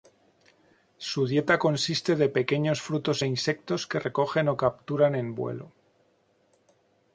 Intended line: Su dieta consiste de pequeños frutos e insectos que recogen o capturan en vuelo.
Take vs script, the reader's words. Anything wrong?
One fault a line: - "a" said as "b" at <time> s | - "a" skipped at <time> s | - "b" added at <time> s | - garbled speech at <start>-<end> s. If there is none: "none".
none